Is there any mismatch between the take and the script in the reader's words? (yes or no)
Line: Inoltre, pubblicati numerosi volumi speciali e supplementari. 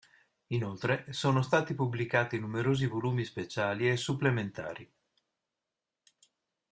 yes